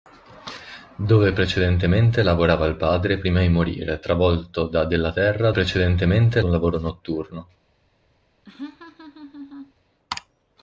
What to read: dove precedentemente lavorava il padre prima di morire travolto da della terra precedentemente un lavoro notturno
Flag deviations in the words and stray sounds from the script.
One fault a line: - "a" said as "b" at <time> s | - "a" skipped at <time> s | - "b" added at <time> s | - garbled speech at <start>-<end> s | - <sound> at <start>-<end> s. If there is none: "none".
- laugh at 8.4-9.7 s